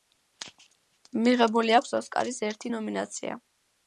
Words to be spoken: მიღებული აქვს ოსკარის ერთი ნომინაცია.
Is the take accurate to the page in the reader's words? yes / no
yes